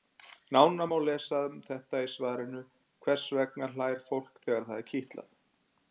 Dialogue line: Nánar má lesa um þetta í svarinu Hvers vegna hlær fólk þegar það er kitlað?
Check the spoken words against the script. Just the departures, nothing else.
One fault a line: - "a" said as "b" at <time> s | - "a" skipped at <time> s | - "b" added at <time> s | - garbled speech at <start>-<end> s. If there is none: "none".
none